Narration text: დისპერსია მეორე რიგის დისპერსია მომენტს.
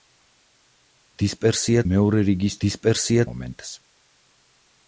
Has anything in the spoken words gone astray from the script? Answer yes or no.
no